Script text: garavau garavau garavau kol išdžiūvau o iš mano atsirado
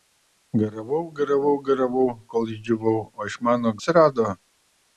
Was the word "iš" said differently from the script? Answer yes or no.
no